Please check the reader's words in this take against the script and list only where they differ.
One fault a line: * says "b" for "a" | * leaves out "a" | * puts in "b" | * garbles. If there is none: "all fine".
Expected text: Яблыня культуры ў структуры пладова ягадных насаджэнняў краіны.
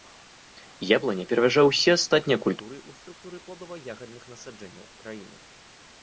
* puts in "пераважае ўсе астатнія"